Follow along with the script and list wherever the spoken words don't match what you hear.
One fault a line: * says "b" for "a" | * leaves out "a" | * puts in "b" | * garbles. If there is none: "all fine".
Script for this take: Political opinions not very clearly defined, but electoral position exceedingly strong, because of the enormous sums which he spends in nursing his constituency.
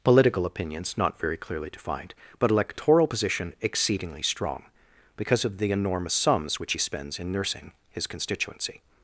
all fine